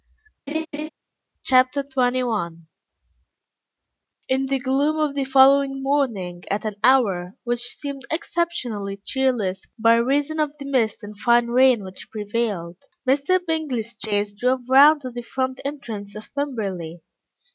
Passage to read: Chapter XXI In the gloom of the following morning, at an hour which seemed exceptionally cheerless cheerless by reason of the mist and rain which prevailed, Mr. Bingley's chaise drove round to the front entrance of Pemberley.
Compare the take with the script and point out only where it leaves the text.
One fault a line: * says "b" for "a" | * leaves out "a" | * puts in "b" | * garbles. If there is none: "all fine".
* leaves out "cheerless"
* puts in "fine"